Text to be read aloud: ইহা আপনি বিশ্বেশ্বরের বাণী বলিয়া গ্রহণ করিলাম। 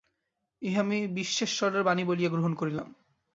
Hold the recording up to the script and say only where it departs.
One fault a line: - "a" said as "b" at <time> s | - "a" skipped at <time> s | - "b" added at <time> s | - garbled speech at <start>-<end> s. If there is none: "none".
- "আপনি" said as "আমি" at 0.8 s